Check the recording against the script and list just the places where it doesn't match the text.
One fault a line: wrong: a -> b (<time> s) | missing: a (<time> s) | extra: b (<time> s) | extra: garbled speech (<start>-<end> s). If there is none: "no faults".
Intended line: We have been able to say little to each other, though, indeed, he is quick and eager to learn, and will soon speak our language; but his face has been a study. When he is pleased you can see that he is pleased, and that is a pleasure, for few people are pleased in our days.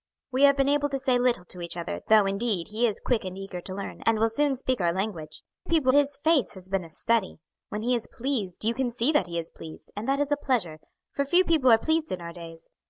wrong: but -> people (5.7 s)